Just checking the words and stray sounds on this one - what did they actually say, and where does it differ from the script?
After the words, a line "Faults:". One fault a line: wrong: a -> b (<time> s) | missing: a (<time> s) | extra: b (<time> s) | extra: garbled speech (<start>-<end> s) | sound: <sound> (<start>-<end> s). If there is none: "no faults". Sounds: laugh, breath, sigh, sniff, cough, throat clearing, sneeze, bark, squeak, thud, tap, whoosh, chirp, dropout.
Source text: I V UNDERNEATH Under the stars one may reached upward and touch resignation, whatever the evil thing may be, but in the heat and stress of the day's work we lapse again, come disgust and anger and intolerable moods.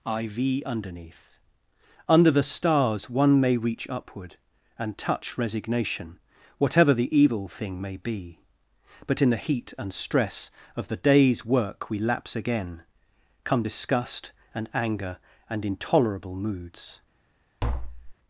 I V UNDERNEATH Under the stars one may reach upward and touch resignation, whatever the evil thing may be, but in the heat and stress of the day's work we lapse again, come disgust and anger and intolerable moods.
Faults:
wrong: reached -> reach (3.5 s)
sound: tap (17.6-18.2 s)